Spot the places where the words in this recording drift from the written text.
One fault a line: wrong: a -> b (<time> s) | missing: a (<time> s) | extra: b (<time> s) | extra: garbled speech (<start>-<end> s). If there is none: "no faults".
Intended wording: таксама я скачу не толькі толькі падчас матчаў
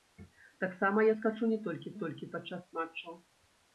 no faults